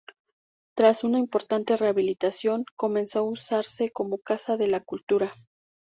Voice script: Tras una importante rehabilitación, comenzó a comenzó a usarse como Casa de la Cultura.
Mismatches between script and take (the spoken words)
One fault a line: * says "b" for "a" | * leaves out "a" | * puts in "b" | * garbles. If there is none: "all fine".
* leaves out "comenzó a"